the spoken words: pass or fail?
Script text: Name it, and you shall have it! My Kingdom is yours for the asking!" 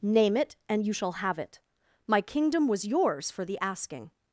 fail